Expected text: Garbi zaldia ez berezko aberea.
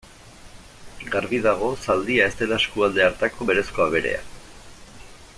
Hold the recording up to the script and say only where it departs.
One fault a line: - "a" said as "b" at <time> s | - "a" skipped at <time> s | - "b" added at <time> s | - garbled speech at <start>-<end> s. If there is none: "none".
- "dago" added at 1.5 s
- "dela eskualde hartako" added at 2.4 s